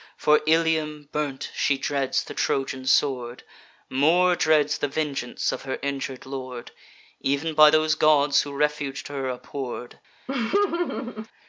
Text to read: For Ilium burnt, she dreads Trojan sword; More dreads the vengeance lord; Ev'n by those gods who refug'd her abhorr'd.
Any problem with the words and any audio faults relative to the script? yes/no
yes